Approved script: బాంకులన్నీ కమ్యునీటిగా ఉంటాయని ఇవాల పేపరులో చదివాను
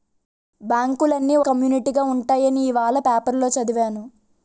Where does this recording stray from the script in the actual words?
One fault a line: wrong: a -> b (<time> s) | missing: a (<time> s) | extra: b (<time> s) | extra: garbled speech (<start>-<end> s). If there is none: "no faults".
no faults